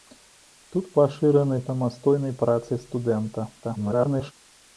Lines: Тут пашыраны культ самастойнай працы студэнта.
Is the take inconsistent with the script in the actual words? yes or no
yes